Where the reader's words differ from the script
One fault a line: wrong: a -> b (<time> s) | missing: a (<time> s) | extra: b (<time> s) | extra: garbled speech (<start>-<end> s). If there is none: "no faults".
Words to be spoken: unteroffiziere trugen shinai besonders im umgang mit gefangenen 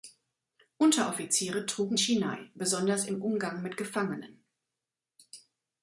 no faults